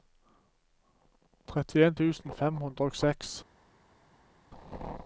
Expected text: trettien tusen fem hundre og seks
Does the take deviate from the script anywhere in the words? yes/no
no